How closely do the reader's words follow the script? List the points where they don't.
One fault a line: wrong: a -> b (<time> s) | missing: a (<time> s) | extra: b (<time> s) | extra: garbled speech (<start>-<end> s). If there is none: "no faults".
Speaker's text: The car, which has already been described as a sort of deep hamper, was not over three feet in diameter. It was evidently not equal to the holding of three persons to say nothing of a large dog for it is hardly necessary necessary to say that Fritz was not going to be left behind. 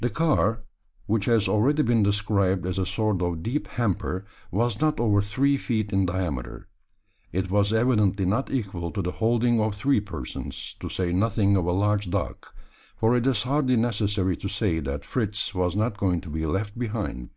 missing: necessary (14.4 s)